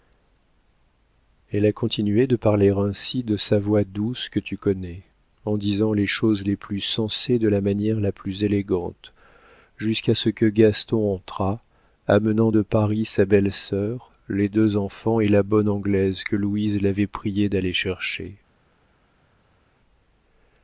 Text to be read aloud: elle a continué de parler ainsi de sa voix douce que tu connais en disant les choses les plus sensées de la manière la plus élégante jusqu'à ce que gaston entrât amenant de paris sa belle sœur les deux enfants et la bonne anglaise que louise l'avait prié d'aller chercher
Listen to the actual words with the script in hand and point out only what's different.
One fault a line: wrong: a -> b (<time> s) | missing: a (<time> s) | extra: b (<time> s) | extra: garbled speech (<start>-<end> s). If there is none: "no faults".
no faults